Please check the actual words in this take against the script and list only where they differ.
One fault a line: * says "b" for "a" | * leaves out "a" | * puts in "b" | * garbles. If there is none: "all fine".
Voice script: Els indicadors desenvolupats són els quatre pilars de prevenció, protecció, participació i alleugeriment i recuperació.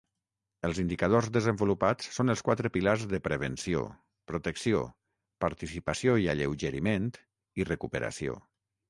all fine